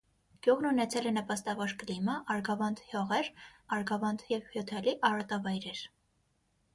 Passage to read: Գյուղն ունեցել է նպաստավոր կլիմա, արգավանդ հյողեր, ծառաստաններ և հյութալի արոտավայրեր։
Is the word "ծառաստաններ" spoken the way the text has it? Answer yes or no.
no